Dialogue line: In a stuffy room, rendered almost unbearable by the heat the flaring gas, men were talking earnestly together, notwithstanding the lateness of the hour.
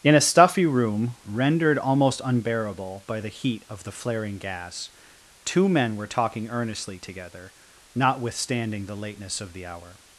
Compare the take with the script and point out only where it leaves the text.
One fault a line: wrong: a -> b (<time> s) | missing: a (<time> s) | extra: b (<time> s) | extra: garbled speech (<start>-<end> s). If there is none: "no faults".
extra: of (3.7 s)
extra: two (5.4 s)